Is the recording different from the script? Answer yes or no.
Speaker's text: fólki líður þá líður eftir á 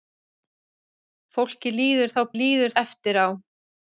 no